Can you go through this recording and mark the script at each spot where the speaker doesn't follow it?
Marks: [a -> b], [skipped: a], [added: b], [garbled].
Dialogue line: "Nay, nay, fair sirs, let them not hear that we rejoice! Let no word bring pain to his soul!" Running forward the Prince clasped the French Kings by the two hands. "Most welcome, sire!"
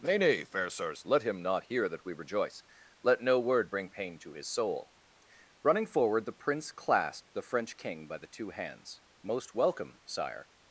"Nay, nay, fair sirs, let [them -> him] not hear that we rejoice! Let no word bring pain to his soul!" Running forward the Prince clasped the French [Kings -> King] by the two hands. "Most welcome, sire!"